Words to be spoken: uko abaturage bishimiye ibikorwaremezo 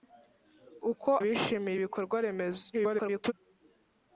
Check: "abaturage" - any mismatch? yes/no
yes